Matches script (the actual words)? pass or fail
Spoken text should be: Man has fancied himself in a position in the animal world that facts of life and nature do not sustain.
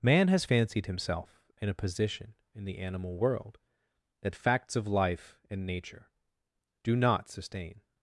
pass